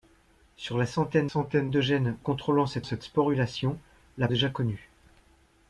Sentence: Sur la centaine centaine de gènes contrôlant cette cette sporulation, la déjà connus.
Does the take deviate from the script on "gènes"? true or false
false